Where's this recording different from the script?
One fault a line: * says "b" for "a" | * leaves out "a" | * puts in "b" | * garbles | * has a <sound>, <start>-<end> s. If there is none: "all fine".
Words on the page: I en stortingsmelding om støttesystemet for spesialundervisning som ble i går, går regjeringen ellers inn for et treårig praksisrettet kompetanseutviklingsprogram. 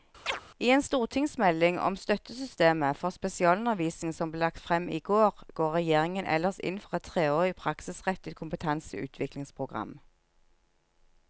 * has a chirp, 0.3-0.4 s
* puts in "lagt frem"